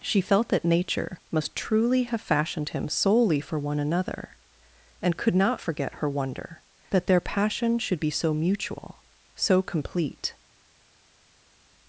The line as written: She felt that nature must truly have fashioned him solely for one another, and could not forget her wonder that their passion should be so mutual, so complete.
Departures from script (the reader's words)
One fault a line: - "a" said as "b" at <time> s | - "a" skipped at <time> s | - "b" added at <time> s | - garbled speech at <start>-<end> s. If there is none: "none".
none